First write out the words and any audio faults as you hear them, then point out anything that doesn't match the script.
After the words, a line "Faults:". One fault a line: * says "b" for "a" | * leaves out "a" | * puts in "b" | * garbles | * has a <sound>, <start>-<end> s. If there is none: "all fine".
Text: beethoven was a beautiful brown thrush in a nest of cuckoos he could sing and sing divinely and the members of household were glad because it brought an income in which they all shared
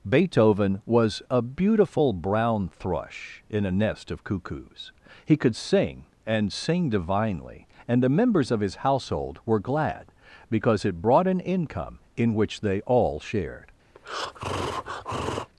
beethoven was a beautiful brown thrush in a nest of cuckoos he could sing and sing divinely and the members of his household were glad because it brought an income in which they all shared
Faults:
* puts in "his"
* has a breath, 13.9-15.5 s